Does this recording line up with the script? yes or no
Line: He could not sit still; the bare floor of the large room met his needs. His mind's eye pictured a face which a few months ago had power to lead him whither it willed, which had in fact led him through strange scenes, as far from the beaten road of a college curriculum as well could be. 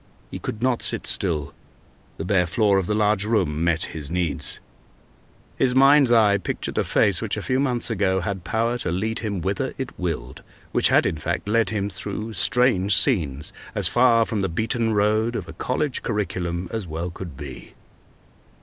yes